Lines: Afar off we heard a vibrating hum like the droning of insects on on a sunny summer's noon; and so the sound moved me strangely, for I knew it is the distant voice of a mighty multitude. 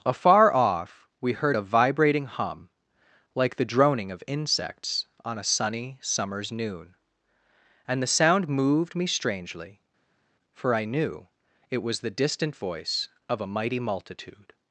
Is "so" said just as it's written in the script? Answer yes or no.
no